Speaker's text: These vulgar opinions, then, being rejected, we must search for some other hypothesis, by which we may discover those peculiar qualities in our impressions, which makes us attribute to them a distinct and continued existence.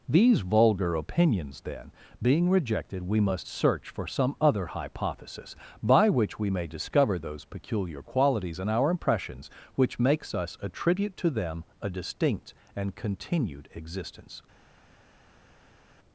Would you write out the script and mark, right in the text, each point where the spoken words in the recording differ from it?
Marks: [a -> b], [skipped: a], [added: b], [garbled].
These vulgar opinions, then, being rejected, we must search for some other hypothesis, by which we may discover those peculiar qualities in our impressions, which makes us attribute to them a distinct and continued existence.